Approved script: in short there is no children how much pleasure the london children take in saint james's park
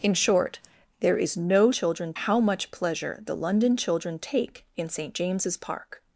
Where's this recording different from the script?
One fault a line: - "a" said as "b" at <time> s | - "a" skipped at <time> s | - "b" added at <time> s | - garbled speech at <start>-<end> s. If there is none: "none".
none